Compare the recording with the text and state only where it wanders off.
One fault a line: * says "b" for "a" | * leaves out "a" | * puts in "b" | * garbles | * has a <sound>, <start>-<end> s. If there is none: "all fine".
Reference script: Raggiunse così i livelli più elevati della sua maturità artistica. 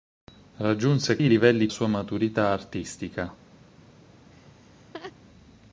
* leaves out "così"
* leaves out "più elevati della"
* has a laugh, 4.3-5.1 s